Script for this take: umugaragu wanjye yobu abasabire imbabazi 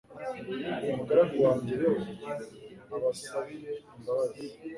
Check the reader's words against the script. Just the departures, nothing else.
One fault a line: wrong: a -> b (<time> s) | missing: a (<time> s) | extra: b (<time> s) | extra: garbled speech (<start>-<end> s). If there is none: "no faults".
no faults